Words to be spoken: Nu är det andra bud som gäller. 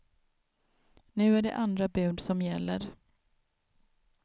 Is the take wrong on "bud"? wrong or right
right